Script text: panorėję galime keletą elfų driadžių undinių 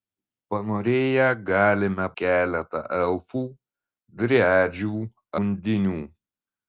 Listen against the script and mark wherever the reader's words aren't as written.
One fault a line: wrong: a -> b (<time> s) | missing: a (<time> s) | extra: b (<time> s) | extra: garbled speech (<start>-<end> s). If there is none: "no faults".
no faults